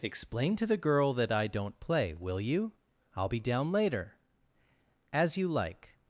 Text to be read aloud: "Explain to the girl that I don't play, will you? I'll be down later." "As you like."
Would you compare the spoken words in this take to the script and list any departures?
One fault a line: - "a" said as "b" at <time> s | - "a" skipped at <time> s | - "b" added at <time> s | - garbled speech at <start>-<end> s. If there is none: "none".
none